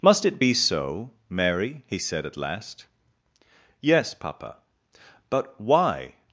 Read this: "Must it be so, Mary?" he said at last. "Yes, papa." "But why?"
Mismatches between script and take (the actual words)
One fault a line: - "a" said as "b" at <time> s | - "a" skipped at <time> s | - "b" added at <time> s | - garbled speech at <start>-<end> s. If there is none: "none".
none